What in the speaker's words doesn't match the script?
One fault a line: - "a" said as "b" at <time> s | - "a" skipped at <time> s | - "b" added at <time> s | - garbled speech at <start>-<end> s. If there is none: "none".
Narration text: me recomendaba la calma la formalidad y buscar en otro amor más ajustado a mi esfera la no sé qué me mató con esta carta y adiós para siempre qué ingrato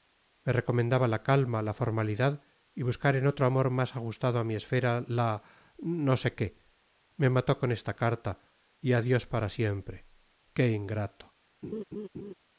none